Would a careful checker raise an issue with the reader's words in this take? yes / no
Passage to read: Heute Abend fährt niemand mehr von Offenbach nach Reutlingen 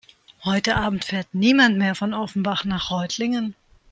no